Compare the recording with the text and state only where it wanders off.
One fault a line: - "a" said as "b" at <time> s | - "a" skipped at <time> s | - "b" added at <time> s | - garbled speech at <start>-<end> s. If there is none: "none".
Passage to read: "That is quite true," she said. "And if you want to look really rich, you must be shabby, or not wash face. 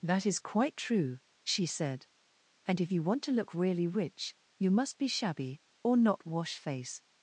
none